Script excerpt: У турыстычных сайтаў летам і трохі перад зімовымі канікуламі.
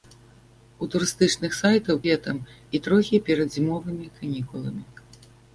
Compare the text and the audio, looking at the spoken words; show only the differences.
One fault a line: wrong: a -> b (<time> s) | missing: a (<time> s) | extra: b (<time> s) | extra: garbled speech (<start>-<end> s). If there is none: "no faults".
no faults